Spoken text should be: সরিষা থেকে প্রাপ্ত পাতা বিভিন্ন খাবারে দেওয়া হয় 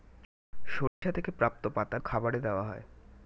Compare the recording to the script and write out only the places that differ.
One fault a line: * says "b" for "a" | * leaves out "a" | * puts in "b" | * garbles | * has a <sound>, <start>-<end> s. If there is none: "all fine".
* has a dropout, 0.9-1.0 s
* leaves out "বিভিন্ন"